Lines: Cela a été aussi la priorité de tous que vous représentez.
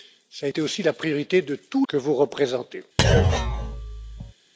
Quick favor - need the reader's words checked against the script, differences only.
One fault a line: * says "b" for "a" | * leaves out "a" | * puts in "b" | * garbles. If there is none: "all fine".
all fine